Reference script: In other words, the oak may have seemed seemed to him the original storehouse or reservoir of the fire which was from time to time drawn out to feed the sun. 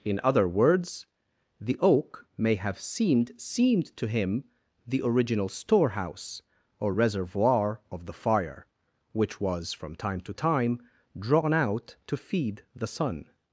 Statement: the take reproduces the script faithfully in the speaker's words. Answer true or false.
true